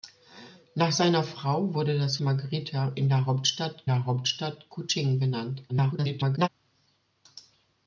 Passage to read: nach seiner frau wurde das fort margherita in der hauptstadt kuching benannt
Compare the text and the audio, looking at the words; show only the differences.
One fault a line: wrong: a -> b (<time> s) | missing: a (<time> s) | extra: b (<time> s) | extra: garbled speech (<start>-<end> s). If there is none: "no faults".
missing: fort (2.2 s)
extra: der hauptstadt (3.9 s)
extra: garbled speech (5.7-6.5 s)